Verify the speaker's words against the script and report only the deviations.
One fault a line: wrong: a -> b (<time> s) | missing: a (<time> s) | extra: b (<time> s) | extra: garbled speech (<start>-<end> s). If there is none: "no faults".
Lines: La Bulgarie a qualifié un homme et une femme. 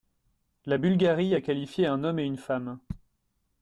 no faults